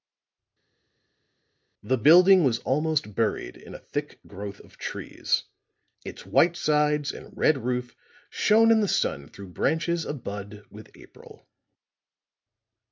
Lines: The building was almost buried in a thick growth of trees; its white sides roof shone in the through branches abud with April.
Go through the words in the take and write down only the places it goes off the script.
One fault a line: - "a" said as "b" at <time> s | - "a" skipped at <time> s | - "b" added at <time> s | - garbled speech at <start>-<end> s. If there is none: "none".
- "and red" added at 7.1 s
- "sun" added at 8.9 s